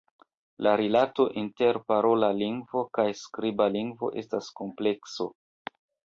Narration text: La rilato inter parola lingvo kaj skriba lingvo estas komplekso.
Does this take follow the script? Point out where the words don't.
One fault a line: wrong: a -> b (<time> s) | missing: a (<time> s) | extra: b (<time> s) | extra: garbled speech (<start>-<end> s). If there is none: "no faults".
no faults